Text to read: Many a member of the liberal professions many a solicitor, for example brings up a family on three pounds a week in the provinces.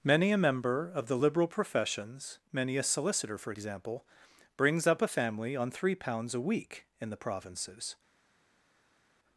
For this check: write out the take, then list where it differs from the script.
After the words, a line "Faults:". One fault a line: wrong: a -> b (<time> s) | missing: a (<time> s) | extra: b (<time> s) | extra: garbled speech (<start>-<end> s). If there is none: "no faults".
Many a member of the liberal professions many a solicitor, for example brings up a family on three pounds a week in the provinces.
Faults:
no faults